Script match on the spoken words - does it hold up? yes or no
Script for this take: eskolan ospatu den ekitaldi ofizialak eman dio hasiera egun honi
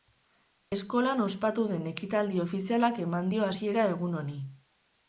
yes